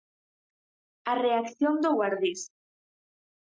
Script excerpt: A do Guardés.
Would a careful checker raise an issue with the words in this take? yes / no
yes